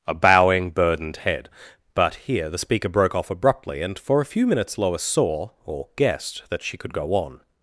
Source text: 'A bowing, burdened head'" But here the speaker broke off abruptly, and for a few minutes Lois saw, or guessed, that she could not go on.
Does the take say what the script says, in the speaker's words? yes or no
no